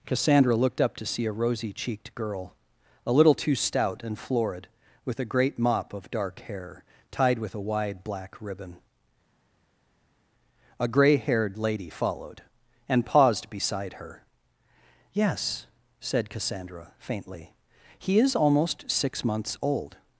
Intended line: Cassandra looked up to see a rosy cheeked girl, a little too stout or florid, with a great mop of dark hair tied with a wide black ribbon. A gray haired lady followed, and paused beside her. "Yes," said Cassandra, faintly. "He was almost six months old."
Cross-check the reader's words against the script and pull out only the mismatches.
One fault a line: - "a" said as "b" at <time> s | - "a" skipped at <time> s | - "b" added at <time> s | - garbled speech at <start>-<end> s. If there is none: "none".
- "or" said as "and" at 4.0 s
- "was" said as "is" at 18.2 s